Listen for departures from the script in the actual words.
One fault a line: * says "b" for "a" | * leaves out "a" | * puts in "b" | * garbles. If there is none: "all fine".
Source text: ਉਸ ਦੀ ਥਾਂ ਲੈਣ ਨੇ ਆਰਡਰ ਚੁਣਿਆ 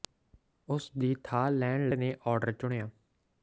all fine